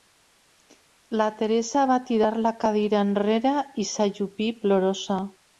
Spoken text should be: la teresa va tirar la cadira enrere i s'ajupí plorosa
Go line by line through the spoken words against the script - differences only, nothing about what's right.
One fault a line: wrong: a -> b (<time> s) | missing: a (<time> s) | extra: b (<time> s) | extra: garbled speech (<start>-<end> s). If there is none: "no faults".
no faults